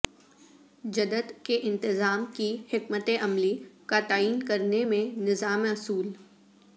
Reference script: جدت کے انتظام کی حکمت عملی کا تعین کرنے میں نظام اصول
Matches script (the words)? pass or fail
pass